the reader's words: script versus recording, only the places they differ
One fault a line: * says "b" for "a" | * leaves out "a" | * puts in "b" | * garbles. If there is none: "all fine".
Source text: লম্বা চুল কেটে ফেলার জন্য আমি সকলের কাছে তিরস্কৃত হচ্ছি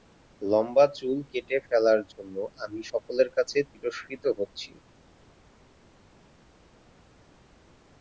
all fine